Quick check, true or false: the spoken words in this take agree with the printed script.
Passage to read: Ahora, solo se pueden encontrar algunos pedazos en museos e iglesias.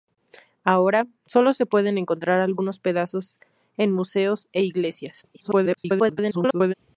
false